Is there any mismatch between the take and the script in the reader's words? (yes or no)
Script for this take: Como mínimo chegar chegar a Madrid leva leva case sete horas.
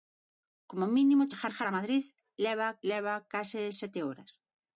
no